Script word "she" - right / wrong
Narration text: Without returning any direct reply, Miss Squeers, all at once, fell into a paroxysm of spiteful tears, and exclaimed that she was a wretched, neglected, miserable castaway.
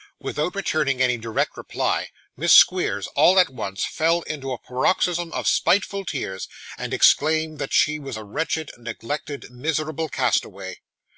right